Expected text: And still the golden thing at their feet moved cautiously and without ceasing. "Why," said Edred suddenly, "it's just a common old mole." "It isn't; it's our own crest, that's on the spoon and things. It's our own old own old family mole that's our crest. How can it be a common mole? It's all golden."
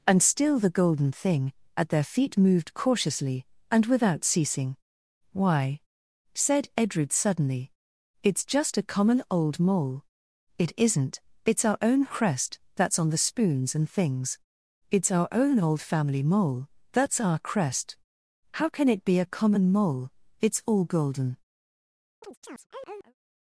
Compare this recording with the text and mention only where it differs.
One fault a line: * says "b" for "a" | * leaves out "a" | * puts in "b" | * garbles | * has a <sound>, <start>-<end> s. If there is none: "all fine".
* says "spoons" for "spoon"
* leaves out "own old"
* has a chirp, 22.2-23.1 s